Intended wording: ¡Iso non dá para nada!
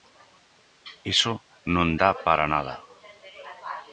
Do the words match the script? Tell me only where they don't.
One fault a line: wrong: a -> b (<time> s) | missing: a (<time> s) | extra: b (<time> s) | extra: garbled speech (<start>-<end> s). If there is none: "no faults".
no faults